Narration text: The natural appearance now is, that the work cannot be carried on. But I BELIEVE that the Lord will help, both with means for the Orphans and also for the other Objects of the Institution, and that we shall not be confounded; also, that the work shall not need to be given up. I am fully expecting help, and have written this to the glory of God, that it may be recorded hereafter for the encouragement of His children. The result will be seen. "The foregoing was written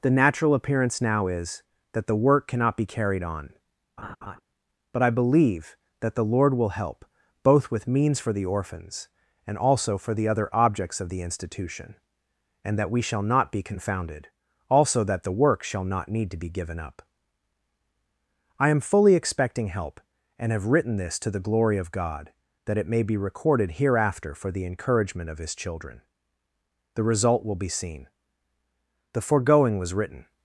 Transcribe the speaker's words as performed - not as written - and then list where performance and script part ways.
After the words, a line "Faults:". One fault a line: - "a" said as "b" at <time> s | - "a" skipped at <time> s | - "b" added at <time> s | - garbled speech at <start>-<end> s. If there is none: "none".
The natural appearance now is, that the work cannot be carried on. But I BELIEVE that the Lord will help, both with means for the Orphans and also for the other Objects of the Institution, and that we shall not be confounded; also, that the work shall not need to be given up. I am fully expecting help, and have written this to the glory of God, that it may be recorded hereafter for the encouragement of His children. The result will be seen. "The foregoing was written
Faults:
none